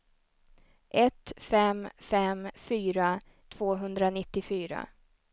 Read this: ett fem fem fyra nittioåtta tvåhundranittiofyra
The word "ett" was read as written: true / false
true